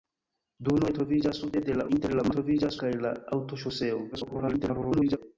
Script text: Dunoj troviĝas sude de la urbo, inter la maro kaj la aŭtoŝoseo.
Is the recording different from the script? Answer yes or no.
yes